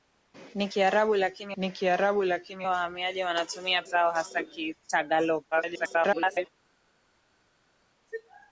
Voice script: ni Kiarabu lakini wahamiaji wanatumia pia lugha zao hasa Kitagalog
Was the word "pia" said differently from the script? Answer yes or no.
yes